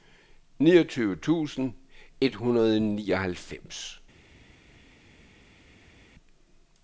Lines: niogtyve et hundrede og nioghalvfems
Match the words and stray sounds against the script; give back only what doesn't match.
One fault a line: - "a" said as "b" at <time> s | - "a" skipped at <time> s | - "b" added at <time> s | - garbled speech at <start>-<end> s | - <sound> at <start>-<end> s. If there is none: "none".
- "tusind" added at 1.1 s